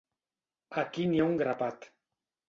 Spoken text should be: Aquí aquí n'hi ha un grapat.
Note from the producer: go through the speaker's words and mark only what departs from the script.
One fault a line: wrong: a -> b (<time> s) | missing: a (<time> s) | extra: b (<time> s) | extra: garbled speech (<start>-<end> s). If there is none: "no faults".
missing: aquí (1.1 s)